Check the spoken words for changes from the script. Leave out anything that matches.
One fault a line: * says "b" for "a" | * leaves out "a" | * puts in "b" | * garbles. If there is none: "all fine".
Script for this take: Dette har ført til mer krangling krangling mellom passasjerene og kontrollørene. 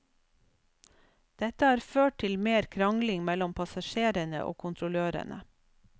* leaves out "krangling"